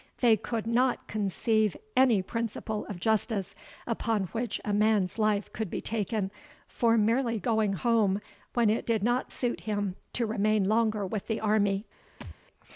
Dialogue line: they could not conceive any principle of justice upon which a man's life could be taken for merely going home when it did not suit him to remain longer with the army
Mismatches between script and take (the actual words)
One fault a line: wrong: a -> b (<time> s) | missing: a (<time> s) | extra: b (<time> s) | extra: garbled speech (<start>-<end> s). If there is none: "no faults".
no faults